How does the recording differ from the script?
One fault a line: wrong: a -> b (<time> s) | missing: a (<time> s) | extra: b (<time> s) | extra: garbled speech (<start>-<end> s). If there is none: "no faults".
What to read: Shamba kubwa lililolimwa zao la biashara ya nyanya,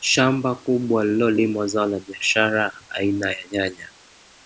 extra: aina (2.9 s)